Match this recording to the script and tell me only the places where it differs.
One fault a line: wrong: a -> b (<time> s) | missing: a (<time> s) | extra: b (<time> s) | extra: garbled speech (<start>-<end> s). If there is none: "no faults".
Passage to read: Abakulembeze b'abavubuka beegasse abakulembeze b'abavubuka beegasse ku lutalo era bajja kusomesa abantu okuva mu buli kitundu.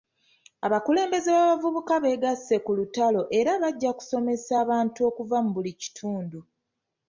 missing: abakulembeze b'abavubuka beegasse (2.5 s)